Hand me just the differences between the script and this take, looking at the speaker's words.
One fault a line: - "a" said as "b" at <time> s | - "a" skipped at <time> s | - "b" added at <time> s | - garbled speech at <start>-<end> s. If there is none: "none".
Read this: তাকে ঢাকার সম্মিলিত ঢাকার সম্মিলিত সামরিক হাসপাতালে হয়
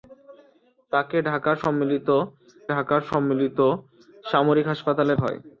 none